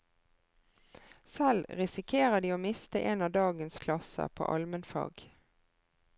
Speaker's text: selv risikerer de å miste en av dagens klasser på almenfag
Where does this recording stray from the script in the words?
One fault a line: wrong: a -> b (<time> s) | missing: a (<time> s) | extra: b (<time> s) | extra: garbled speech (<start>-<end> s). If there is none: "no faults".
no faults